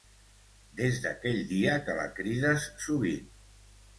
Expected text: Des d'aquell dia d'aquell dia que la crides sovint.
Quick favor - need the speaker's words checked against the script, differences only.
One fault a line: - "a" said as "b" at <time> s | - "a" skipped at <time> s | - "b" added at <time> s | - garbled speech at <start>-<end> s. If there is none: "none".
- "d'aquell dia" skipped at 1.8 s